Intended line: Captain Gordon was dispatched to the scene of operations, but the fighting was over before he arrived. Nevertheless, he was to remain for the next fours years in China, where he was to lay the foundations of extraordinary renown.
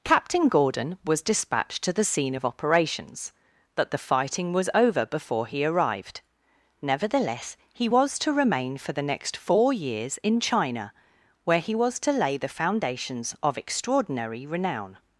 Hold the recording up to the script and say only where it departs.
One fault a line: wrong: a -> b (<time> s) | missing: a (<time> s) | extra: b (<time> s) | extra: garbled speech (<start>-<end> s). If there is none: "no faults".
wrong: fours -> four (9.4 s)